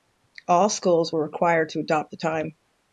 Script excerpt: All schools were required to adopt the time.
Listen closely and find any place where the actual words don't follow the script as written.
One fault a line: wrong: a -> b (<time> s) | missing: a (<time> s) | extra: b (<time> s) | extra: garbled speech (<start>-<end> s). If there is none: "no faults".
no faults